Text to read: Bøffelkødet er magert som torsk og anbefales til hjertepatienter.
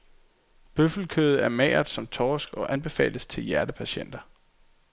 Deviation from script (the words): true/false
false